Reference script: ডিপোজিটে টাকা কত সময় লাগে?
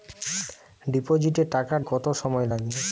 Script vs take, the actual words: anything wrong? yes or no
no